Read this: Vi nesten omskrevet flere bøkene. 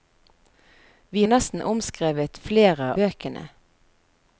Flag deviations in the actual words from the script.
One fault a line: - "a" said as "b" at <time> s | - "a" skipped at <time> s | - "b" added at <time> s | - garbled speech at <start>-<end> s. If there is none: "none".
none